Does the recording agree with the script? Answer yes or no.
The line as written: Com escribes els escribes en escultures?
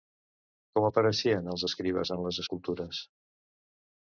no